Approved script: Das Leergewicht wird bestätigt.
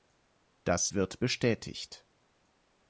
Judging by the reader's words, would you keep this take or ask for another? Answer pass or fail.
fail